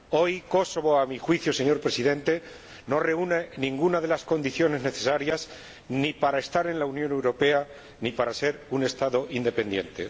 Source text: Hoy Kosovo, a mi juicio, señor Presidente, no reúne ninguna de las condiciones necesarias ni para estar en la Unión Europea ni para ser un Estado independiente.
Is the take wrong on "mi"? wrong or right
right